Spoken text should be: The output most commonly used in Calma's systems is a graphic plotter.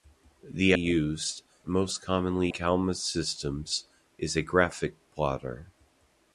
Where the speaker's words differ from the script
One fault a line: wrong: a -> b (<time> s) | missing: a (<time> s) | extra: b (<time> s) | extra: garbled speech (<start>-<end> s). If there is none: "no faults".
wrong: output -> used (0.7 s)
missing: used in (2.5 s)